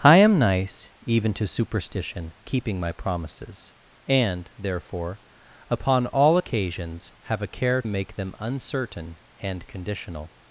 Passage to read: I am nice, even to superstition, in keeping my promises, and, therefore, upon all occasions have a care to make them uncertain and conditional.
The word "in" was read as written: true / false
false